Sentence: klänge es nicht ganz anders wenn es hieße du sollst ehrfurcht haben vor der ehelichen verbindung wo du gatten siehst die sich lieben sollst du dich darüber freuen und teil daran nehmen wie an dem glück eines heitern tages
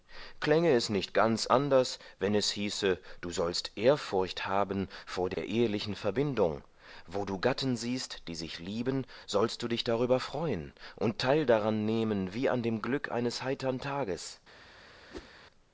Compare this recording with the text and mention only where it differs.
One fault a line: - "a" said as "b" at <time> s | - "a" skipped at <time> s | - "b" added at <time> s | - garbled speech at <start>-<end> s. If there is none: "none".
none